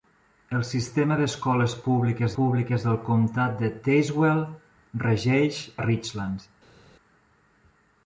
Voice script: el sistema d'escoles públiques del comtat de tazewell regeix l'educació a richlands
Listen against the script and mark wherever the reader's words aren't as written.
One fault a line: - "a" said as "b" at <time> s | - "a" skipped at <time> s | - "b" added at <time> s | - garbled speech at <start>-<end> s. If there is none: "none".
- "públiques" added at 2.4 s
- "l'educació" skipped at 5.6 s